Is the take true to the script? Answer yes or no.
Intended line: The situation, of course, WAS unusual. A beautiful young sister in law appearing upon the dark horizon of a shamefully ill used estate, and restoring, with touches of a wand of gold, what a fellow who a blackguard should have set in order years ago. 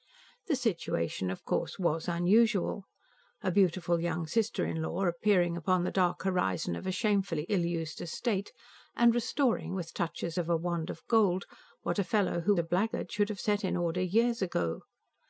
yes